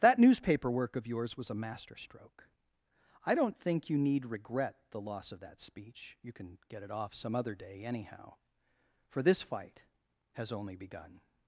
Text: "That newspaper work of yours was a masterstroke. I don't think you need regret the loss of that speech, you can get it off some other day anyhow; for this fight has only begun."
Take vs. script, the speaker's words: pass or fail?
pass